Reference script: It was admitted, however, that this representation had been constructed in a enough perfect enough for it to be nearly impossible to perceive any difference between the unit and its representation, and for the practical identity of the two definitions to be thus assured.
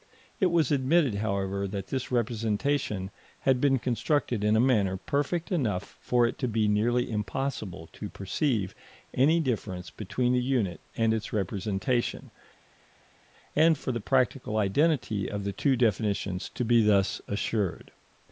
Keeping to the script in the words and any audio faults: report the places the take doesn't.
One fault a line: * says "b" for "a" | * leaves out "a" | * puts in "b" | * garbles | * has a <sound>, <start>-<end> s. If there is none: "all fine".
* says "manner" for "enough"